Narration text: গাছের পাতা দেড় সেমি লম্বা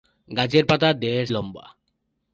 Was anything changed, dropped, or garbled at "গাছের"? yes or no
no